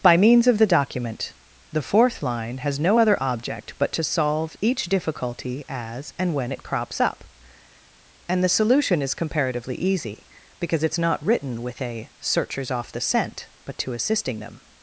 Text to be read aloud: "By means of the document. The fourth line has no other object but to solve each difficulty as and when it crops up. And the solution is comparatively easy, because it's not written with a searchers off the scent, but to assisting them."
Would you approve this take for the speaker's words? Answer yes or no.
yes